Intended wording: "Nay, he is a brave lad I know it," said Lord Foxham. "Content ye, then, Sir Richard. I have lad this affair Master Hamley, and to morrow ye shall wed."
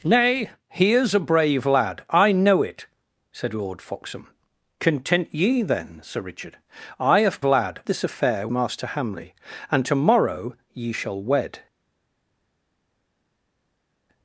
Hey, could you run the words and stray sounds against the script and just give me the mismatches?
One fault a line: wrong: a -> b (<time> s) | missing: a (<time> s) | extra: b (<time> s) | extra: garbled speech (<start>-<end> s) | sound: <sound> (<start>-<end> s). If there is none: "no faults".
no faults